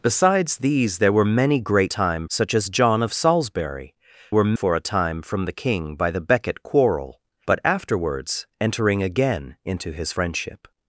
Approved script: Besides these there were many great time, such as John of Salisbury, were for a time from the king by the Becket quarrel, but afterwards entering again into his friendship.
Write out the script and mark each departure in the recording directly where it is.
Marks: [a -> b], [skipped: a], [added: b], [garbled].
Besides these there were many great time, such as John of Salisbury, were for a time from the king by the Becket quarrel, but afterwards entering again into his friendship.